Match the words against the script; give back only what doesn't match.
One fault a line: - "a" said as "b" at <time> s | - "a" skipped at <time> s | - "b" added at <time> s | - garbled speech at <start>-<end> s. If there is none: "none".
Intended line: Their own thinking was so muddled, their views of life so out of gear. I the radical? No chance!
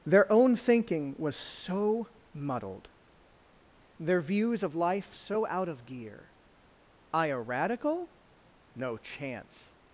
- "the" said as "a" at 7.3 s